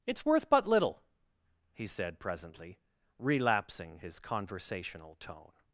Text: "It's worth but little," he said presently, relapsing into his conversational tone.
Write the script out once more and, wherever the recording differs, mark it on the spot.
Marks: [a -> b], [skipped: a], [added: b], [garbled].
"It's worth but little," he said presently, relapsing [skipped: into] his conversational tone.